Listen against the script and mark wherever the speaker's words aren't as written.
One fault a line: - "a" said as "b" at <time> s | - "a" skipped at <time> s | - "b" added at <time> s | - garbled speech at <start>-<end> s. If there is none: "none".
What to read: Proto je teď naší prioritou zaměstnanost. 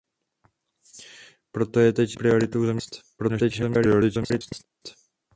- "naší" skipped at 2.2 s
- garbled speech at 3.2-4.7 s